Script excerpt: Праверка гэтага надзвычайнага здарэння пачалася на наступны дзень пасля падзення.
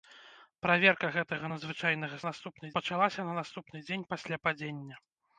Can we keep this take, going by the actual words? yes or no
no